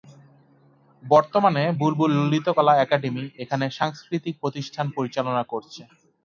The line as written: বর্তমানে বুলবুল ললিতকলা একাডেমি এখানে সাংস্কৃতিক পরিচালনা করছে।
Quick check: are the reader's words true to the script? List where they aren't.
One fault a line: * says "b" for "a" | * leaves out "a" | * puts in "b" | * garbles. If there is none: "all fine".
* puts in "প্রতিষ্ঠান"